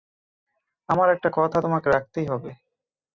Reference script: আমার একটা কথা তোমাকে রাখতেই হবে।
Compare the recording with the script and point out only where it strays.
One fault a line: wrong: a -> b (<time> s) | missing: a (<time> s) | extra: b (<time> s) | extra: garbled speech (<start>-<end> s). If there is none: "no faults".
no faults